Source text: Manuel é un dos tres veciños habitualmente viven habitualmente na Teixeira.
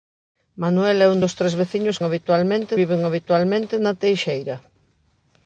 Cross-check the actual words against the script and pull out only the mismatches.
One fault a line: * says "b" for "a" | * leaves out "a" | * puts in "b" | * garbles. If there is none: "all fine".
all fine